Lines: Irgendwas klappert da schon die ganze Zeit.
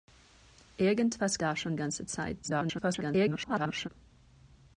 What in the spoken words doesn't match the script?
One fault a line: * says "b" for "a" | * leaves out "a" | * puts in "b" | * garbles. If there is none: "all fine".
* leaves out "klappert"
* leaves out "die"
* garbles